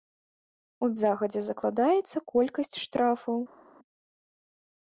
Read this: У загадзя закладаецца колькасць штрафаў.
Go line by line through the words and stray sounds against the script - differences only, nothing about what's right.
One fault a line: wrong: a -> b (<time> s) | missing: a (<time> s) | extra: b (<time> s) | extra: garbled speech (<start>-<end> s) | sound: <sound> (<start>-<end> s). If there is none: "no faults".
no faults